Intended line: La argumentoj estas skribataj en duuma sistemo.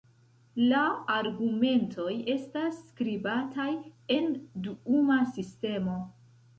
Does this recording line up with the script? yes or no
yes